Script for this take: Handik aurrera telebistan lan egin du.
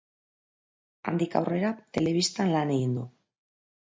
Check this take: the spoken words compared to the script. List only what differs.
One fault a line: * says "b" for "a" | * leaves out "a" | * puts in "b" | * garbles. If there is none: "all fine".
all fine